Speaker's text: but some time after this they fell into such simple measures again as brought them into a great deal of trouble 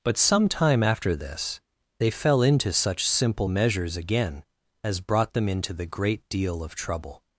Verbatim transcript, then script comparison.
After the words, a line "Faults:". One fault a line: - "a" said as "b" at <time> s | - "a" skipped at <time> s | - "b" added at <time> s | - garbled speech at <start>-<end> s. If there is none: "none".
but some time after this they fell into such simple measures again as brought them into the great deal of trouble
Faults:
- "a" said as "the" at 5.7 s